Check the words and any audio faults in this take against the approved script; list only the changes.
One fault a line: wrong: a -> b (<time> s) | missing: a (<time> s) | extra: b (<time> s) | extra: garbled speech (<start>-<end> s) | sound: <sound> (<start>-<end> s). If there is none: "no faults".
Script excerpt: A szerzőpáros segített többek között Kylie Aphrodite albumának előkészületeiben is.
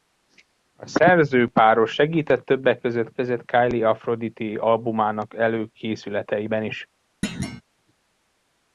extra: között (3.1 s)
sound: thud (7.2-7.6 s)